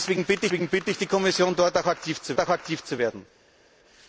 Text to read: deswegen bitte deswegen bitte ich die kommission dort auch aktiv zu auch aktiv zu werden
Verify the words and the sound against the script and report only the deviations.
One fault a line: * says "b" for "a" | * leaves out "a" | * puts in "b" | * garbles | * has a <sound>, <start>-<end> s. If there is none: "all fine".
all fine